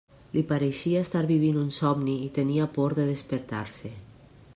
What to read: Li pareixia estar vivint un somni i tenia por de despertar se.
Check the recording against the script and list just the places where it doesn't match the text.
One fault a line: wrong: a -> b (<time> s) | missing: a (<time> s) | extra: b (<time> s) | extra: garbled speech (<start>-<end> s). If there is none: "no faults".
no faults